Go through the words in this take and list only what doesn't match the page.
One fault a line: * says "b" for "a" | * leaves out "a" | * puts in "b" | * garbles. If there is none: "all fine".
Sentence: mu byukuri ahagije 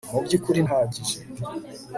all fine